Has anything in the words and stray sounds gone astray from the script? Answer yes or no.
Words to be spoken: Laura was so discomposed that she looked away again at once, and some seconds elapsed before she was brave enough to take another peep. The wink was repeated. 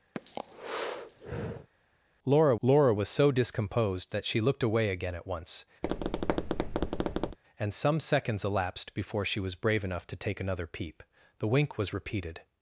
yes